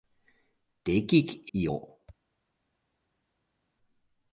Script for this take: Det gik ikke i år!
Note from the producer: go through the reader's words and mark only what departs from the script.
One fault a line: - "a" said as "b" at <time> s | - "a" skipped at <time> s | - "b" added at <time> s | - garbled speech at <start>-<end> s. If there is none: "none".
- "ikke" skipped at 1.5 s